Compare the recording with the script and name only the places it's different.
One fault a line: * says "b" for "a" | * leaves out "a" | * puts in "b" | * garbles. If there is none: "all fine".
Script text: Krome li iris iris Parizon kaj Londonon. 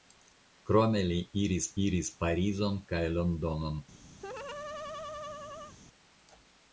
all fine